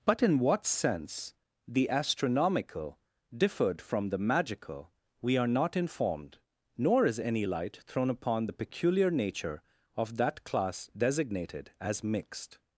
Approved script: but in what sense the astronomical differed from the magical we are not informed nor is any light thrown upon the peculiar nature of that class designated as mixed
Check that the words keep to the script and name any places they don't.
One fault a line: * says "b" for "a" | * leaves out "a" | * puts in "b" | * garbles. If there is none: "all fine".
all fine